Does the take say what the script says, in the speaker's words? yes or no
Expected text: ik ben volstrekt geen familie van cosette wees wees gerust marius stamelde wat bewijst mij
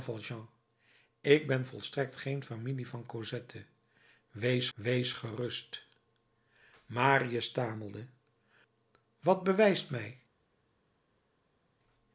yes